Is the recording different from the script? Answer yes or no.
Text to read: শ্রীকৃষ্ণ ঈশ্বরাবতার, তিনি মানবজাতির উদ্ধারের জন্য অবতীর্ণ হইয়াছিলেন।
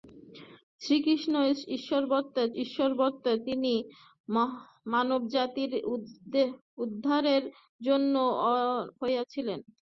yes